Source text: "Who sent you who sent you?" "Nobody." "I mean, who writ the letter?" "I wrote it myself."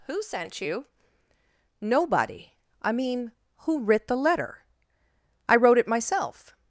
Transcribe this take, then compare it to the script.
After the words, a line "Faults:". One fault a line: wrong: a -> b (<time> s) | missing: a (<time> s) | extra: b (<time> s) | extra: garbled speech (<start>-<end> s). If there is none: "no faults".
"Who sent you?" "Nobody." "I mean, who writ the letter?" "I wrote it myself."
Faults:
missing: who sent you (0.8 s)